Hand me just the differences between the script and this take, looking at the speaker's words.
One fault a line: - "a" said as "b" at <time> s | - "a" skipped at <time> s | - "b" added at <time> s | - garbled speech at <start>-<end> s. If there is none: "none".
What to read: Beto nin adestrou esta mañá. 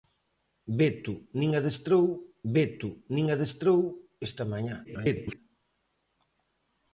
- "beto nin adestrou" added at 2.5 s
- garbled speech at 4.8-5.4 s